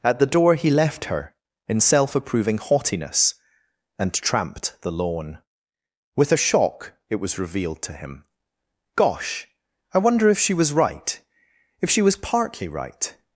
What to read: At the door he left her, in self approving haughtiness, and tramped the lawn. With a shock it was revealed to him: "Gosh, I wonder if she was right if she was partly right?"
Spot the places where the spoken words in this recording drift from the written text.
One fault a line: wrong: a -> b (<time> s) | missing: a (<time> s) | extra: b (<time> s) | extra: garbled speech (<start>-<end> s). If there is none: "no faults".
no faults